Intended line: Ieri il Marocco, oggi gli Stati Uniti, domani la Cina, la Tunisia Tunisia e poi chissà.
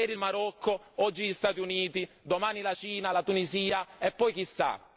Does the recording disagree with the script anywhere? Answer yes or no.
yes